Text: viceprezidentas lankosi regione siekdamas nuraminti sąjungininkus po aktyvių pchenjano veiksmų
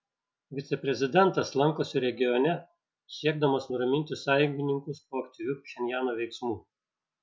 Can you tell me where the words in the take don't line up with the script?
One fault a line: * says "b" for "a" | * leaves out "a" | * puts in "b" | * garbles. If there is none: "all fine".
all fine